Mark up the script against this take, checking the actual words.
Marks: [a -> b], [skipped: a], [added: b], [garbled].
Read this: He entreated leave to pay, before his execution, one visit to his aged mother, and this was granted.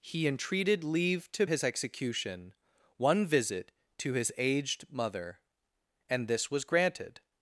He entreated leave to [skipped: pay, before] his execution, one visit to his aged mother, and this was granted.